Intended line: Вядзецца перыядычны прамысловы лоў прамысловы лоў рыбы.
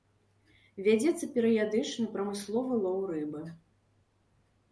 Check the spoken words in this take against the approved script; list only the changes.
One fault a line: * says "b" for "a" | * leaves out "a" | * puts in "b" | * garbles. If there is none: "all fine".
* leaves out "прамысловы лоў"